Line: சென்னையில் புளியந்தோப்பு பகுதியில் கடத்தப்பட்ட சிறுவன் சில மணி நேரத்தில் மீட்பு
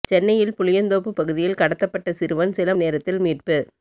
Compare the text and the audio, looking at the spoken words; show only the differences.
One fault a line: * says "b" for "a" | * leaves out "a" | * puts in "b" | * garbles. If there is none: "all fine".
* leaves out "மணி"